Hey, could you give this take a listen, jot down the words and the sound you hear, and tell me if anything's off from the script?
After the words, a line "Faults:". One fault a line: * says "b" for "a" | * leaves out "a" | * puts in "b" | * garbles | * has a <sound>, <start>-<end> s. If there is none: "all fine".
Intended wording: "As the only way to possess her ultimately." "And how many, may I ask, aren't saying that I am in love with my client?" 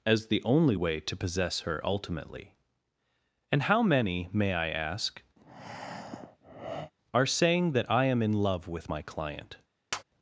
"As the only way to possess her ultimately." "And how many, may I ask, are saying that I am in love with my client?"
Faults:
* has a breath, 5.4-6.9 s
* says "are" for "aren't"
* has a tap, 9.9-10.0 s